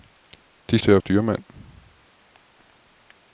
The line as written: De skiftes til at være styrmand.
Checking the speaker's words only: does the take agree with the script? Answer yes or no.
no